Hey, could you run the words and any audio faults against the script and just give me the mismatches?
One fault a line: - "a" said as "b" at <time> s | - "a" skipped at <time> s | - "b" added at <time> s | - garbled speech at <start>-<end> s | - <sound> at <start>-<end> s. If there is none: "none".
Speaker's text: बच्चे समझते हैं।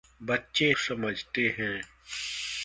none